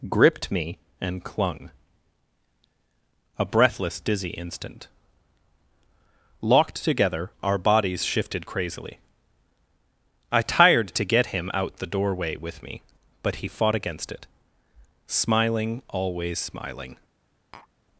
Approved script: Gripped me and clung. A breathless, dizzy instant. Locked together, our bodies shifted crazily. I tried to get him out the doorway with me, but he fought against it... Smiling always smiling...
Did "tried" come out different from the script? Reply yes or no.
yes